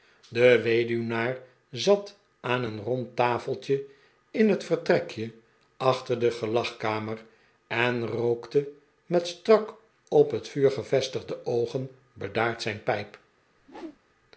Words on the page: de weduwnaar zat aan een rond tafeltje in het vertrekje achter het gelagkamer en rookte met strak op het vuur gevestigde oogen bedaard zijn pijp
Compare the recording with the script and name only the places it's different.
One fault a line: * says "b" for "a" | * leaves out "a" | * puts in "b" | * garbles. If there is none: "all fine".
* says "de" for "het"